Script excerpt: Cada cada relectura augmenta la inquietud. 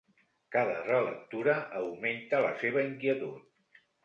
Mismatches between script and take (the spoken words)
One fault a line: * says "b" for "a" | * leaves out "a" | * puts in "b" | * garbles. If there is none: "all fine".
* leaves out "cada"
* puts in "seva"